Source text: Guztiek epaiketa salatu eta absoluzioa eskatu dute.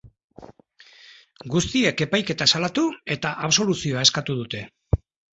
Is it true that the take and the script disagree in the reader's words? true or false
false